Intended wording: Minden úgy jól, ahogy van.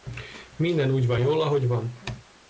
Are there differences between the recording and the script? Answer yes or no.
yes